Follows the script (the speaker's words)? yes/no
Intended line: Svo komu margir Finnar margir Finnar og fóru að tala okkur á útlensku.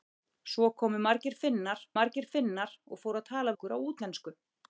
yes